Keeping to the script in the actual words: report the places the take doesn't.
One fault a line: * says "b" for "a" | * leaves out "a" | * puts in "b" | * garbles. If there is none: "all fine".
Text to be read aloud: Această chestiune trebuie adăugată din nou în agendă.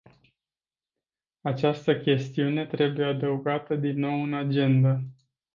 all fine